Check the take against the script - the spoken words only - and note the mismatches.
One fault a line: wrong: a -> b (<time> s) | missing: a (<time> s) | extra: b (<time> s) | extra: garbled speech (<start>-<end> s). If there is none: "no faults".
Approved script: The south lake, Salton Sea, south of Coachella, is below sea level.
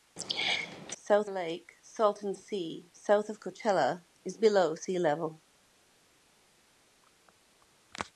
no faults